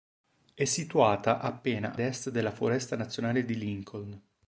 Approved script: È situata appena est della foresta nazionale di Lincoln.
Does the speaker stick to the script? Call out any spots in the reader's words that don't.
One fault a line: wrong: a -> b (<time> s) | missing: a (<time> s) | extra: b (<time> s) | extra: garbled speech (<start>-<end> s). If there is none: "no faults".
no faults